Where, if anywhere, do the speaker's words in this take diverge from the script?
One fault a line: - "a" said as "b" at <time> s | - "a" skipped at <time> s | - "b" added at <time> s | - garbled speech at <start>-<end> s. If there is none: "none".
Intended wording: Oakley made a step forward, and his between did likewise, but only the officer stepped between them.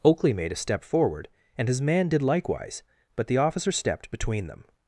- "between" said as "man" at 1.8 s
- "only" skipped at 3.3 s